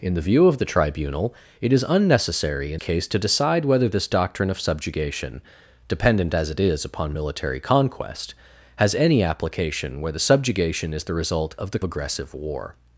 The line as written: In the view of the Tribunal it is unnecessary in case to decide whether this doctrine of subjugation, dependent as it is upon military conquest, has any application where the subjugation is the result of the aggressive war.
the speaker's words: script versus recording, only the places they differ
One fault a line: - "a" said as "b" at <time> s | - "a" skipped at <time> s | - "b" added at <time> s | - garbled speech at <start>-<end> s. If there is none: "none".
none